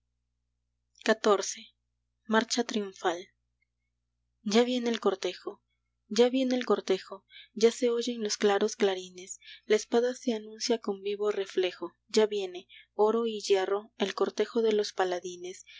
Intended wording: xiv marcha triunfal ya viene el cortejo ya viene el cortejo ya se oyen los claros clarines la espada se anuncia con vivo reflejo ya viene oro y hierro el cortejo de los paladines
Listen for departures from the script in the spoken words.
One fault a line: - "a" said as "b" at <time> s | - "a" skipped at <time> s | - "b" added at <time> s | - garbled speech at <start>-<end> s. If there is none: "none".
none